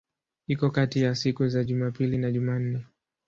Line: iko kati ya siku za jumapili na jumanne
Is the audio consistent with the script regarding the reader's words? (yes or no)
yes